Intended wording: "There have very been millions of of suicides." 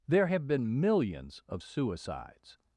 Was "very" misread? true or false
true